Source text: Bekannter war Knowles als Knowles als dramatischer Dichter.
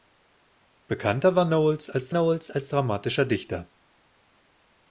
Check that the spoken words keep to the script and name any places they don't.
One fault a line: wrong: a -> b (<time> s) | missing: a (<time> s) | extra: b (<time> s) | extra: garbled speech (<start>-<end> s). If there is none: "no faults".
no faults